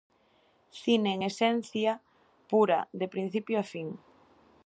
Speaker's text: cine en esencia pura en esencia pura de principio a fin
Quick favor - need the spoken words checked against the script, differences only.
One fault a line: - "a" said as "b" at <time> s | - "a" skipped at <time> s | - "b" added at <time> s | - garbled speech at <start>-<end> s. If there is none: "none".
- "en esencia pura" skipped at 2.9 s